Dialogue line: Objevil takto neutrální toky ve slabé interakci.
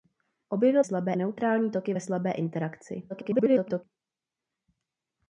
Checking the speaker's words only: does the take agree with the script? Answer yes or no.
no